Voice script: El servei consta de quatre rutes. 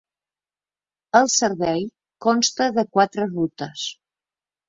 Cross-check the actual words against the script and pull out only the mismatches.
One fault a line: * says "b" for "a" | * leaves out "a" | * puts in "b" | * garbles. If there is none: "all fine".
all fine